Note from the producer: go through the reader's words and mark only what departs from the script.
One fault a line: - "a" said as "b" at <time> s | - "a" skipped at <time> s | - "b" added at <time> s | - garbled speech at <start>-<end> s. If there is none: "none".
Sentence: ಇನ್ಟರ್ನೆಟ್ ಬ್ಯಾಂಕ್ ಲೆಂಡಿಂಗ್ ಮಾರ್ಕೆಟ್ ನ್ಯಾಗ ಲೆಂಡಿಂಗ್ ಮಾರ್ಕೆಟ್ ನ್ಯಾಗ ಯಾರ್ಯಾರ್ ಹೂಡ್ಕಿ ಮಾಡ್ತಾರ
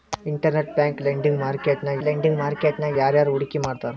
none